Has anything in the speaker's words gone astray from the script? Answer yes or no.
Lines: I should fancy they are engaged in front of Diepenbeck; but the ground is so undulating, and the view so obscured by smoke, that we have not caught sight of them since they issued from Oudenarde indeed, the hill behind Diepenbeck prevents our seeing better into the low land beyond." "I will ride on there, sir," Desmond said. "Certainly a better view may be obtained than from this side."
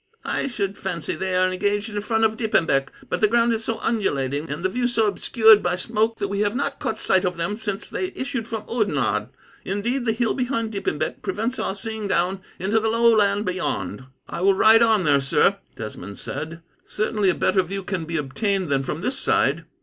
yes